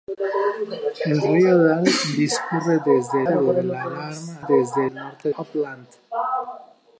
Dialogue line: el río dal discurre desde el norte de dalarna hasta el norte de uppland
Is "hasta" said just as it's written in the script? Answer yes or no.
no